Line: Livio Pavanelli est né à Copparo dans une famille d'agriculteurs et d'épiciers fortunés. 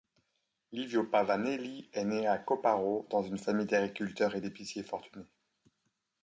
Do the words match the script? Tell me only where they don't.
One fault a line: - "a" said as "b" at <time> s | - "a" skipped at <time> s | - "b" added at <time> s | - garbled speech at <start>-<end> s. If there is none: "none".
none